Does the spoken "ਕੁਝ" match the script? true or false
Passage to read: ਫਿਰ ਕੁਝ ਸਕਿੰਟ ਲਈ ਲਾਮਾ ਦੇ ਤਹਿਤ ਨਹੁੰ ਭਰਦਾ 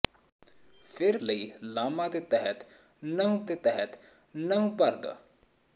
false